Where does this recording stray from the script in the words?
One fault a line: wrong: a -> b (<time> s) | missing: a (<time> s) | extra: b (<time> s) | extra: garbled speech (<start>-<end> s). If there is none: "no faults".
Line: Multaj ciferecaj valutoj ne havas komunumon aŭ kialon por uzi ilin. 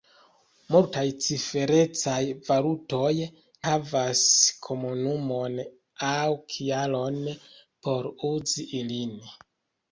missing: ne (3.1 s)